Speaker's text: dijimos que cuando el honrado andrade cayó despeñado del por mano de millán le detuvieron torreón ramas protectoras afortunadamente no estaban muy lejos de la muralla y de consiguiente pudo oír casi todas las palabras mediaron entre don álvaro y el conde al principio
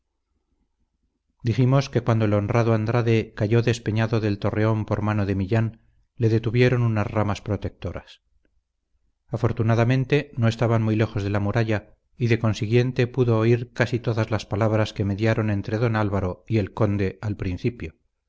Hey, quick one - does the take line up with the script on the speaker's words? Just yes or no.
no